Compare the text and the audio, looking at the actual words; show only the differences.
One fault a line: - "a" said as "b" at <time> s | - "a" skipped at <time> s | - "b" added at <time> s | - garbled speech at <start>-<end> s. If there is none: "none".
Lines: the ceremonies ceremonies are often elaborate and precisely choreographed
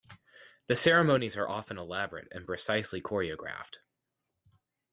- "ceremonies" skipped at 1.4 s